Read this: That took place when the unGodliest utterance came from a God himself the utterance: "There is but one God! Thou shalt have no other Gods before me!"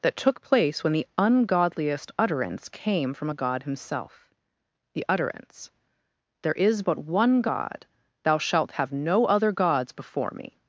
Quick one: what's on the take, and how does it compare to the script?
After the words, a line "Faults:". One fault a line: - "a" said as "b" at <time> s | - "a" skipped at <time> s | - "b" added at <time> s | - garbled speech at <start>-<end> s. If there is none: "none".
That took place when the unGodliest utterance came from a God himself the utterance: "There is but one God! Thou shalt have no other Gods before me!"
Faults:
none